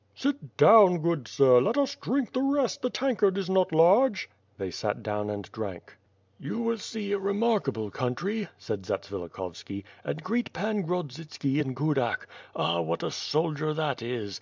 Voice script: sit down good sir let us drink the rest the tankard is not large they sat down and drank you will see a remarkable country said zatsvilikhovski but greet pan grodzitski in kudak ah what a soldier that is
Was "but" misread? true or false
true